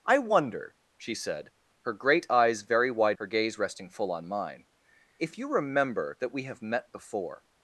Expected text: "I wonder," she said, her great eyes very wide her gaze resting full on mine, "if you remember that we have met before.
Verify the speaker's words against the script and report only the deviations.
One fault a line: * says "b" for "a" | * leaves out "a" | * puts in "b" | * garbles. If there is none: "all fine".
all fine